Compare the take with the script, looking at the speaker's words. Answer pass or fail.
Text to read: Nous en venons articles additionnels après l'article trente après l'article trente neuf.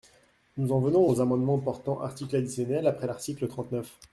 fail